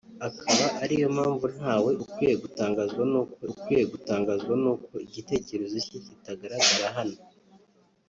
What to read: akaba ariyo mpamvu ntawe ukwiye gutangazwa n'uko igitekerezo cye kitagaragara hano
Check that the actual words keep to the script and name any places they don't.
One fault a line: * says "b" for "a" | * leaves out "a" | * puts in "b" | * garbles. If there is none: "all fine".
* puts in "ukwiye gutangazwa n'uko"